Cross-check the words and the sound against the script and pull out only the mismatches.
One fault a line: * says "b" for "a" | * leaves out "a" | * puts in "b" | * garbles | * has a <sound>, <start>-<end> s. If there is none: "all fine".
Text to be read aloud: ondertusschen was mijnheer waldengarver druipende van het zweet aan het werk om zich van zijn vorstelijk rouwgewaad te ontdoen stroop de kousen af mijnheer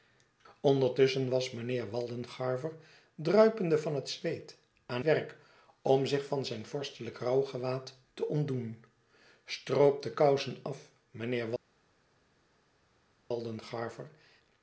* leaves out "het"